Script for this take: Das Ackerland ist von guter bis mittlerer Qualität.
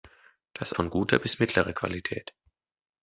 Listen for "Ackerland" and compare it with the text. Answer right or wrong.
wrong